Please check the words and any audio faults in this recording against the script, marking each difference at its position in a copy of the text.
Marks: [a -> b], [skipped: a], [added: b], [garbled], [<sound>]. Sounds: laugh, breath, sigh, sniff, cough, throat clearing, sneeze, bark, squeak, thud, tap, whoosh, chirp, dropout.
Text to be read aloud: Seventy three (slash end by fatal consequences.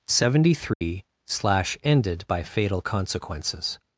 Seventy three [dropout] (slash [end -> ended] by fatal consequences.